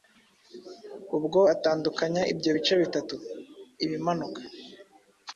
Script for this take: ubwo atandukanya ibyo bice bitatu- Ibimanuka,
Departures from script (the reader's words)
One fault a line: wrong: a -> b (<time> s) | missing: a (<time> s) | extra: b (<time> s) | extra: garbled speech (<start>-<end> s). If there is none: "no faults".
no faults